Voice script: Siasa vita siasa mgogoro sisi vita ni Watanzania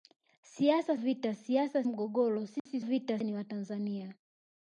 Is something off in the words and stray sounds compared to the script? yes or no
yes